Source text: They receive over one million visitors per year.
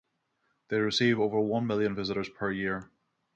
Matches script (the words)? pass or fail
pass